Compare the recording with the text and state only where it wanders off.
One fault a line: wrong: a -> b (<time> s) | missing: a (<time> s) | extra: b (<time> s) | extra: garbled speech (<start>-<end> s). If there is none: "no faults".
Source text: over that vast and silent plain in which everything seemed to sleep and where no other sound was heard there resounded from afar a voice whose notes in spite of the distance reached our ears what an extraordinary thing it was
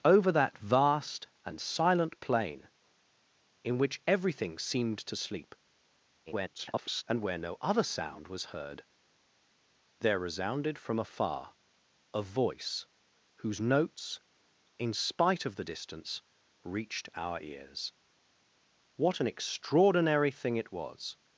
extra: garbled speech (6.3-7.0 s)